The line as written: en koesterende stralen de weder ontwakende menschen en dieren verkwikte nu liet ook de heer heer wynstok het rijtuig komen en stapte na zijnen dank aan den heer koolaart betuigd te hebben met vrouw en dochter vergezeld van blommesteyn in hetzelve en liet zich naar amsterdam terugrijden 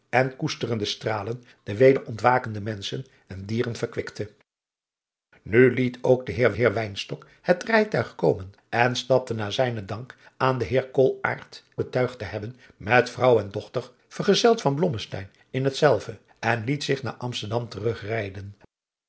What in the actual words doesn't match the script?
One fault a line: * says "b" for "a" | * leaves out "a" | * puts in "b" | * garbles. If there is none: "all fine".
all fine